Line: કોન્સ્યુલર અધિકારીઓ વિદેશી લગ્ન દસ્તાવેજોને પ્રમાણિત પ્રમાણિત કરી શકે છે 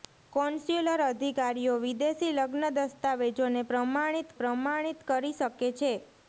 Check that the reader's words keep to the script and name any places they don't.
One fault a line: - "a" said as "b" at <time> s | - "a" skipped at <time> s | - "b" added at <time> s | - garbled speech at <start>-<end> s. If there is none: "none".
none